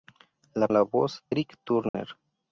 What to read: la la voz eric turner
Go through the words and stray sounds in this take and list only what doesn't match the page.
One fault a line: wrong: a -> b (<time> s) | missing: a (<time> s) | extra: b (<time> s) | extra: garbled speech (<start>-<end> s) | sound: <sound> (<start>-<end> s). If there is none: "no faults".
sound: dropout (1.9-1.9 s)